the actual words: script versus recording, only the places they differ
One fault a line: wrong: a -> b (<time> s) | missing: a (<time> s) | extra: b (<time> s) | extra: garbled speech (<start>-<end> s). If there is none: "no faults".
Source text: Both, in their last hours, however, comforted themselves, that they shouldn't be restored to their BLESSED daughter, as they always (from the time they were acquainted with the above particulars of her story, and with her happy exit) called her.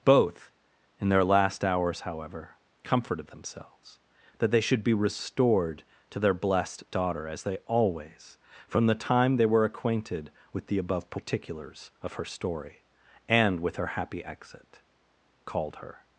wrong: shouldn't -> should (4.6 s)